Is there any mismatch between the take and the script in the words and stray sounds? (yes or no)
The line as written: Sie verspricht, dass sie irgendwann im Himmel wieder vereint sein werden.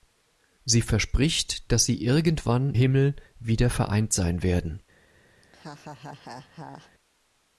yes